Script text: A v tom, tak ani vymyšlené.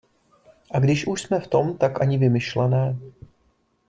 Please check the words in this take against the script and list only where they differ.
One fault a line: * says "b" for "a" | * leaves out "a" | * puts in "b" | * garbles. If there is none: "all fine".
* puts in "když už jsme"